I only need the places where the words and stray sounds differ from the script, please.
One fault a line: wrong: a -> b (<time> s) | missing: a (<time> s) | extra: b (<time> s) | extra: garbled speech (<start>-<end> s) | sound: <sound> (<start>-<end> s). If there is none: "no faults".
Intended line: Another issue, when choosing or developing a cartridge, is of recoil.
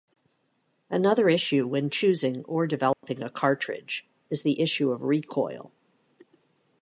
sound: dropout (2.9-3.0 s)
extra: the issue (4.4 s)